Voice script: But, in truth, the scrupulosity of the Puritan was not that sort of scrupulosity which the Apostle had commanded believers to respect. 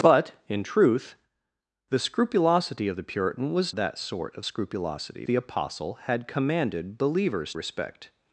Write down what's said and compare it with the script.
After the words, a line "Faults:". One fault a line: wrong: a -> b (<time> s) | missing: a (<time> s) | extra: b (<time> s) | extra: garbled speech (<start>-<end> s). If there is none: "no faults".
But, in truth, the scrupulosity of the Puritan was that sort of scrupulosity the Apostle had commanded believers respect.
Faults:
missing: not (3.8 s)
missing: which (5.3 s)
missing: to (7.5 s)